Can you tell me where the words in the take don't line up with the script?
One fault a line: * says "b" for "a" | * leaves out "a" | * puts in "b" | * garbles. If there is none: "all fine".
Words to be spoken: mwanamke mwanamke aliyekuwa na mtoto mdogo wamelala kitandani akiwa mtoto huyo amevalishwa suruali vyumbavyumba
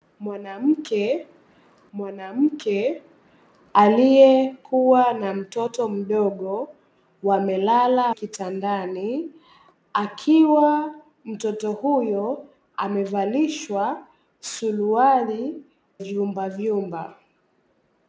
all fine